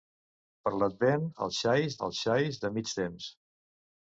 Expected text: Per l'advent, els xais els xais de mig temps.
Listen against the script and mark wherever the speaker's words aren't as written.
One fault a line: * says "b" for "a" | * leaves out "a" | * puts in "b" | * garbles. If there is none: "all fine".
all fine